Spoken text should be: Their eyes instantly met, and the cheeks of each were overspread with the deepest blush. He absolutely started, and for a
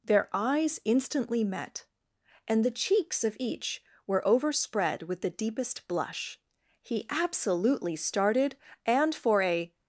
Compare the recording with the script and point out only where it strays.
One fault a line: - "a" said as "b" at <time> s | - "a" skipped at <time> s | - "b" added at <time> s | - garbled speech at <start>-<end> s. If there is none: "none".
none